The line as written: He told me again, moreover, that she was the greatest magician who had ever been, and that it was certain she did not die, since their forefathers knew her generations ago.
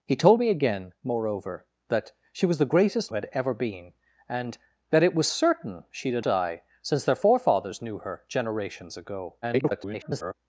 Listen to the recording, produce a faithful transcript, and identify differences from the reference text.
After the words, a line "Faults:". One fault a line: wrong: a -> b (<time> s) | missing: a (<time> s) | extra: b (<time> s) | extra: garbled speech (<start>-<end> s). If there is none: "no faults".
He told me again, moreover, that she was the greatest had ever been, and that it was certain she did die, since their forefathers knew her generations ago. [garbled]
Faults:
missing: magician who (3.1 s)
missing: not (6.2 s)
extra: garbled speech (9.4-10.3 s)